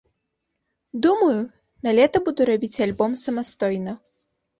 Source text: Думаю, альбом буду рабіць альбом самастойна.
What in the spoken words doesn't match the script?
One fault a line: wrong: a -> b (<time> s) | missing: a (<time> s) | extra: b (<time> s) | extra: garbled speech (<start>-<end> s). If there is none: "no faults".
wrong: альбом -> налета (1.9 s)